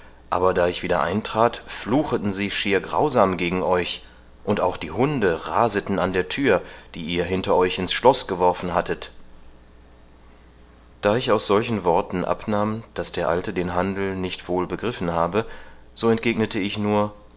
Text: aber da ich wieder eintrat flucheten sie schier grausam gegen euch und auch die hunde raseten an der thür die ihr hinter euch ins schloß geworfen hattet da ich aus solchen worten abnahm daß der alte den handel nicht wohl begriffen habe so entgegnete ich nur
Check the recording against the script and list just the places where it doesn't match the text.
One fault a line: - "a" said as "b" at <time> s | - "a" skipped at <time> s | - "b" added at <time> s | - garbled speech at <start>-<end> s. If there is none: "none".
none